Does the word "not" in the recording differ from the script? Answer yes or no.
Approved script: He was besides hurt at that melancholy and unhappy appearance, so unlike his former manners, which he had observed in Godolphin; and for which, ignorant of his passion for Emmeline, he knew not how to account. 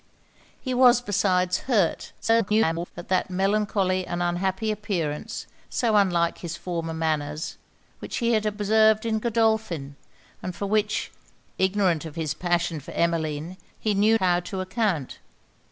yes